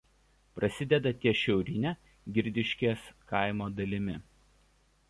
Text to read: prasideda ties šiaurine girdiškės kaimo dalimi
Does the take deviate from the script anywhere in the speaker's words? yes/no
no